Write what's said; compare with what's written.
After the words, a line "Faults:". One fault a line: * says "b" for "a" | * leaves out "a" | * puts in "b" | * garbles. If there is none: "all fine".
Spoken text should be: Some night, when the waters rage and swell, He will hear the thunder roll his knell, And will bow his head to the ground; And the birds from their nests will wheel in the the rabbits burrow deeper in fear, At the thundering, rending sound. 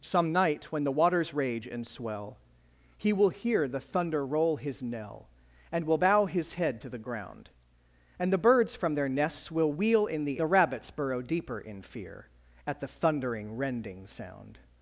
Some night, when the waters rage and swell, He will hear the thunder roll his knell, And will bow his head to the ground; And the birds from their nests will wheel in the the rabbits burrow deeper in fear, At the thundering, rending sound.
Faults:
all fine